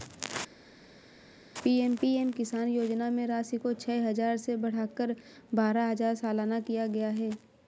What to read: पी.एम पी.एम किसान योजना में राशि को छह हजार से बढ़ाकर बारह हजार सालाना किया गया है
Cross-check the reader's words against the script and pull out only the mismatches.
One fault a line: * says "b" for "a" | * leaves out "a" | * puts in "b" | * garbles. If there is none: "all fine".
all fine